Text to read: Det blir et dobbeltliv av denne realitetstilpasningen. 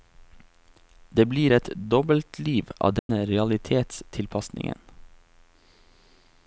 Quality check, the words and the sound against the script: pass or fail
fail